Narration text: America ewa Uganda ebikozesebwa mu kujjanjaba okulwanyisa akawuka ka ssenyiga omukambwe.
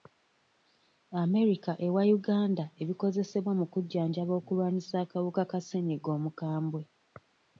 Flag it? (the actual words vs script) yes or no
no